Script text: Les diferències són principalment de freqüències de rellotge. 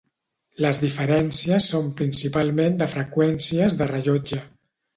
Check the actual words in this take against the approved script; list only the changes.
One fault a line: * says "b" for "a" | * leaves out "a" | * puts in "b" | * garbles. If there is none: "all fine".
all fine